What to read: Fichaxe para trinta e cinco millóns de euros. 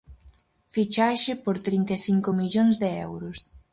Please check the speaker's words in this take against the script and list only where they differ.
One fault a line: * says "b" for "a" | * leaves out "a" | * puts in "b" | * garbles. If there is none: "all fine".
* says "por" for "para"